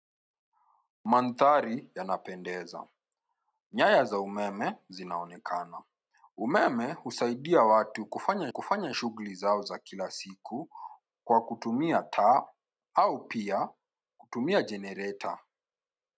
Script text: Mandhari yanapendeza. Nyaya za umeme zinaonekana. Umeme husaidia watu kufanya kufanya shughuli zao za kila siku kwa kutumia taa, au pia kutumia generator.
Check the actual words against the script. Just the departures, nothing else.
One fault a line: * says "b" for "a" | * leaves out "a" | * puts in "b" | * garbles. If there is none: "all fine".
all fine